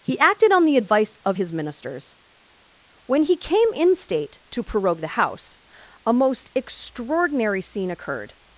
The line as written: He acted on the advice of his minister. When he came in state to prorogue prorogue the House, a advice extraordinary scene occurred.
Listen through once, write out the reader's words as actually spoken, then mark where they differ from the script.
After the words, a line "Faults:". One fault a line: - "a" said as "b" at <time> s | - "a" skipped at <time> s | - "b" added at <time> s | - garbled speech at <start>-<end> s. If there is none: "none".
He acted on the advice of his ministers. When he came in state to prorogue the House, a most extraordinary scene occurred.
Faults:
- "minister" said as "ministers" at 1.5 s
- "prorogue" skipped at 5.0 s
- "advice" said as "most" at 6.1 s